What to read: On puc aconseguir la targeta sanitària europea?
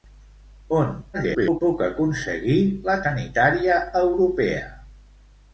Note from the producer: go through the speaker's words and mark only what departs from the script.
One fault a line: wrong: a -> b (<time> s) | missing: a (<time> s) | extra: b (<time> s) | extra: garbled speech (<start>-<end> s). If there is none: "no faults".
extra: garbled speech (1.1-1.6 s)
missing: targeta (3.0 s)